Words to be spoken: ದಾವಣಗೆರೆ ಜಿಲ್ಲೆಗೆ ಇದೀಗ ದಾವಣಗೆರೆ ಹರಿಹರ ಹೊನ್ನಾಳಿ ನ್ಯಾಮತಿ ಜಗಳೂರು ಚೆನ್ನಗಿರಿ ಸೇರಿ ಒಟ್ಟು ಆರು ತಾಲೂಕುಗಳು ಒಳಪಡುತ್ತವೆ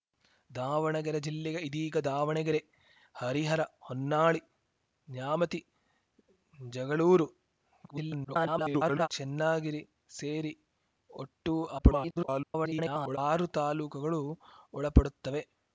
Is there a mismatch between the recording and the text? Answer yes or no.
yes